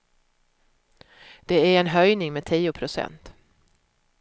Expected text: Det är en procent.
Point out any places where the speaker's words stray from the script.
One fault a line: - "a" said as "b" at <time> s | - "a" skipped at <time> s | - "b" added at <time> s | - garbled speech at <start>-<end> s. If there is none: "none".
- "höjning med tio" added at 1.9 s